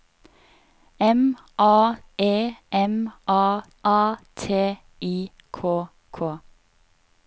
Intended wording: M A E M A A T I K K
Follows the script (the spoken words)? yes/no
yes